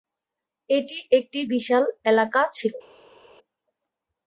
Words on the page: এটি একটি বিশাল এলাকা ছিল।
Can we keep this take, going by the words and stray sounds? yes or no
yes